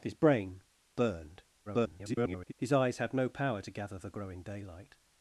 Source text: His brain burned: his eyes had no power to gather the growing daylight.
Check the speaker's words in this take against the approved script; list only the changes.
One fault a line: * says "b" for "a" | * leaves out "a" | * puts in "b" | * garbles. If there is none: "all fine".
* garbles